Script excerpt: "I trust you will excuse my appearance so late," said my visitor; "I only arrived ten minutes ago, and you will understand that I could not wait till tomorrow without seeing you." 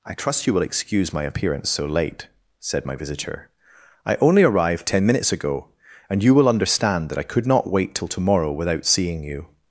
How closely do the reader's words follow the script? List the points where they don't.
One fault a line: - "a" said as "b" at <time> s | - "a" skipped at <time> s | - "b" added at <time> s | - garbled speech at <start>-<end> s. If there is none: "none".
none